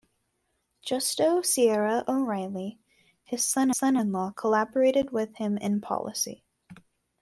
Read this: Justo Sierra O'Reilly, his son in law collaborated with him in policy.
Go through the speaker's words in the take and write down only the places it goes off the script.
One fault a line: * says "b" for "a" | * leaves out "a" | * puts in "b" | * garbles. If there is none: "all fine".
* puts in "son"